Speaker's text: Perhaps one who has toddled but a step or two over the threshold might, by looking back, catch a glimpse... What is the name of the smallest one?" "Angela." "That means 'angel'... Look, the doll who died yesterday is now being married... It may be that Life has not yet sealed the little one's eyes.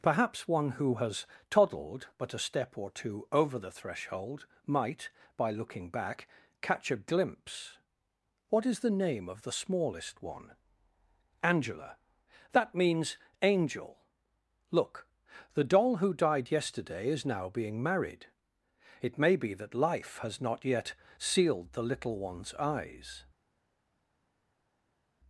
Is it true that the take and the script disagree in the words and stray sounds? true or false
false